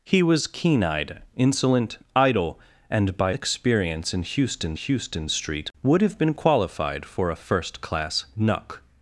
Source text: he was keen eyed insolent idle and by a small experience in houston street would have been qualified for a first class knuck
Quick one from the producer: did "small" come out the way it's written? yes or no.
no